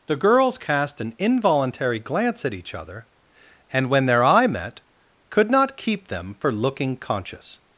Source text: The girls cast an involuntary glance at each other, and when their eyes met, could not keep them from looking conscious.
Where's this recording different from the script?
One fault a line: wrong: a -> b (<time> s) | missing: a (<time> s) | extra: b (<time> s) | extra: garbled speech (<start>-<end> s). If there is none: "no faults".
wrong: eyes -> eye (4.2 s)
wrong: from -> for (6.4 s)